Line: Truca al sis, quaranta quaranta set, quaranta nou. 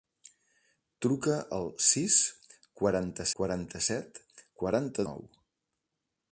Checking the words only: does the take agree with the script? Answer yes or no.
yes